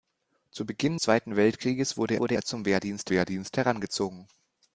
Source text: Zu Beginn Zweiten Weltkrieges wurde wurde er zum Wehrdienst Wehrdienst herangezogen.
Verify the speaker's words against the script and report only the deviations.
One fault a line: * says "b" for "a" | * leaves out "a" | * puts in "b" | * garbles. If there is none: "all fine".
all fine